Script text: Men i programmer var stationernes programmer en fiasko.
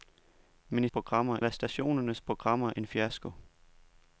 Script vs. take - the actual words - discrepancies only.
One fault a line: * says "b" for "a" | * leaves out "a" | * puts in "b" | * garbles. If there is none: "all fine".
all fine